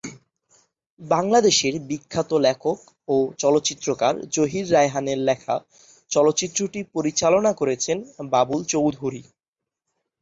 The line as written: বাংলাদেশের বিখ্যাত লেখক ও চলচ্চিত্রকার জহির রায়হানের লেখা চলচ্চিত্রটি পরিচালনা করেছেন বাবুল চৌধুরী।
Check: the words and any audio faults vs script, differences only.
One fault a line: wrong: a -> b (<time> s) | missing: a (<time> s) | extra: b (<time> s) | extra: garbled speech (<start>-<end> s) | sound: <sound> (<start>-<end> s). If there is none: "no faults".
no faults